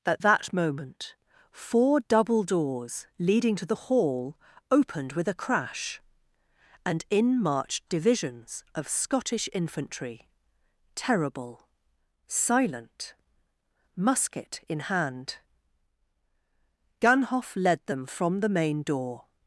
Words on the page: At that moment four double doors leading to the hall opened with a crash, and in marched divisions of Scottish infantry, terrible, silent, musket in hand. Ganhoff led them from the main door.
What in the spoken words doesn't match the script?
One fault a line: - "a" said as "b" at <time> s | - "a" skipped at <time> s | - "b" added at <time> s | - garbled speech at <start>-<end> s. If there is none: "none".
none